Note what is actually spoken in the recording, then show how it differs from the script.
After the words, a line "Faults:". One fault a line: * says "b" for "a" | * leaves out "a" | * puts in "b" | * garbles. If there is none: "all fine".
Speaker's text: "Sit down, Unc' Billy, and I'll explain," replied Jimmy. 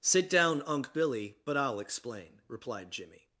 "Sit down, Unc' Billy, but I'll explain," replied Jimmy.
Faults:
* says "but" for "and"